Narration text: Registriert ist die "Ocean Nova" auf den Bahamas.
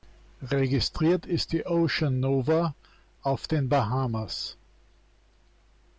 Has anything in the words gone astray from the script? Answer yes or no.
no